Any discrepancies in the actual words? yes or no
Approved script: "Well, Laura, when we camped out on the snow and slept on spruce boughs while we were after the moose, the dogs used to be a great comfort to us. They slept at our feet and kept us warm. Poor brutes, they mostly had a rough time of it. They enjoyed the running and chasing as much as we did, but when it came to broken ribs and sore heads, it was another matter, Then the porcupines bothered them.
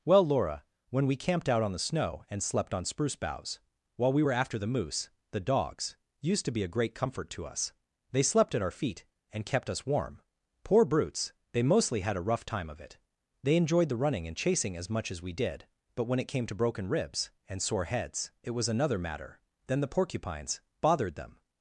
no